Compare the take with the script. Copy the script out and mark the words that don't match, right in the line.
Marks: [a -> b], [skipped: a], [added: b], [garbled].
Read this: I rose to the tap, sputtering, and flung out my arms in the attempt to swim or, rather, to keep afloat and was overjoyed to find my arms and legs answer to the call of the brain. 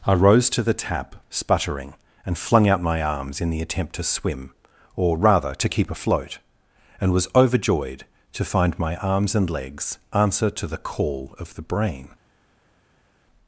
I rose to the tap, sputtering, and flung out my arms in the attempt to swim or, rather, to keep afloat and was overjoyed to find my arms and legs answer to the call of the brain.